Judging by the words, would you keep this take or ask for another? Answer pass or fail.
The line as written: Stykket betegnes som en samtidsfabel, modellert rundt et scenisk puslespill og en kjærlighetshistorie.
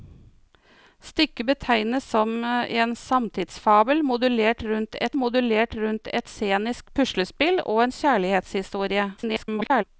fail